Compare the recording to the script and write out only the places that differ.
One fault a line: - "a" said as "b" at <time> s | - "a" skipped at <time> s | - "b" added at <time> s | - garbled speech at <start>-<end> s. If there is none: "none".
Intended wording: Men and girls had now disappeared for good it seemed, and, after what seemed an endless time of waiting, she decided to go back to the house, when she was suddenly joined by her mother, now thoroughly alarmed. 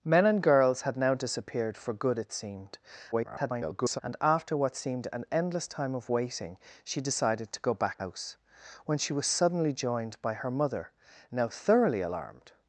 - garbled speech at 3.1-4.0 s
- "to the" skipped at 8.0 s